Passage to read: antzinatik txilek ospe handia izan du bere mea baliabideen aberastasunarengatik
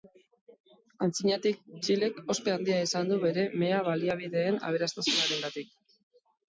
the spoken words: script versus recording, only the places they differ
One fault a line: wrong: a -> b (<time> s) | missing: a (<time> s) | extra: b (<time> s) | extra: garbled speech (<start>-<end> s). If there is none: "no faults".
no faults